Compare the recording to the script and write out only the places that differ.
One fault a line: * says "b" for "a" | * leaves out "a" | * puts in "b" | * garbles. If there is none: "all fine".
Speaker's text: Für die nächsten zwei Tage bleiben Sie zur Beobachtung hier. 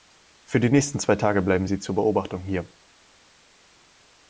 all fine